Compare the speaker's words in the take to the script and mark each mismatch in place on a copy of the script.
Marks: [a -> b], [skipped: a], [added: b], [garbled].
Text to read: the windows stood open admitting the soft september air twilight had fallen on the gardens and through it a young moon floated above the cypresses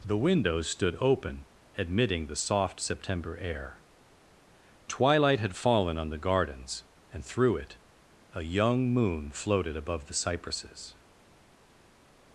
the windows stood open admitting the soft september air twilight had fallen on the gardens and through it a young moon floated above the cypresses